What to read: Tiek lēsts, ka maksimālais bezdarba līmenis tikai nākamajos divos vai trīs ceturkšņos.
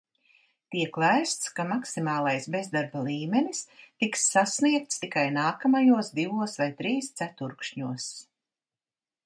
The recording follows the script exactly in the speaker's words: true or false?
false